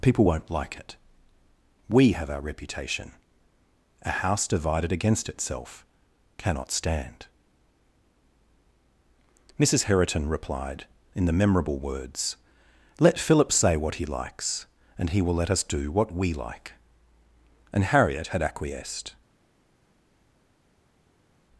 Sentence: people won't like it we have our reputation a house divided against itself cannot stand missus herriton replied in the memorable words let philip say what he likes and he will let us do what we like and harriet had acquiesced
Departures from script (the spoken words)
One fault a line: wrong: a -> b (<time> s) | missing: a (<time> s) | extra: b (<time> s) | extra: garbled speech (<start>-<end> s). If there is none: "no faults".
no faults